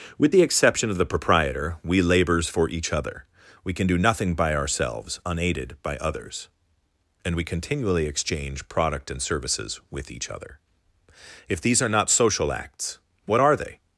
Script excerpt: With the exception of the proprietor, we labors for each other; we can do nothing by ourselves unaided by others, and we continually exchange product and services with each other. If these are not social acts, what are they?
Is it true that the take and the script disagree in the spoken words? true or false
false